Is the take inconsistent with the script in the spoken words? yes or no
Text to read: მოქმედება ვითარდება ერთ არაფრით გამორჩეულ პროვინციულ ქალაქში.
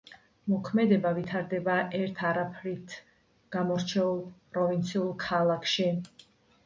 no